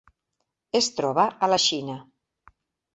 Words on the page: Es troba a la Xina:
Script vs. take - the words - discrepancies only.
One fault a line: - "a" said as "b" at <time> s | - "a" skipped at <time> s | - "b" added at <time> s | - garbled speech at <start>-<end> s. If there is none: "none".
none